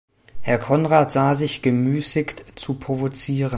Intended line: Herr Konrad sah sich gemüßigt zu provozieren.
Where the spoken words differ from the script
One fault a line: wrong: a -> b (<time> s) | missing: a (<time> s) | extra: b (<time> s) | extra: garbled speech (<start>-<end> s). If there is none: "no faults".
no faults